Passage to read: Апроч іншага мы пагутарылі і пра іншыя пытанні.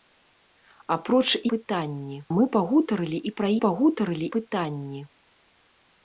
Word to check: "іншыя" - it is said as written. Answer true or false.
false